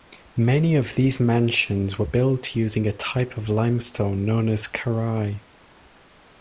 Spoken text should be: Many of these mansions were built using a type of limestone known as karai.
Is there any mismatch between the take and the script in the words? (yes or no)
no